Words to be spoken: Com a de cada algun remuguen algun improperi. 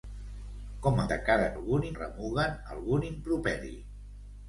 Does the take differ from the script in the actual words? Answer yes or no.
no